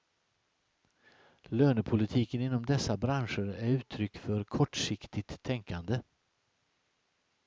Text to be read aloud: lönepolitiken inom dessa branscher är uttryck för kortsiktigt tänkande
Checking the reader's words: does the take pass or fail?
pass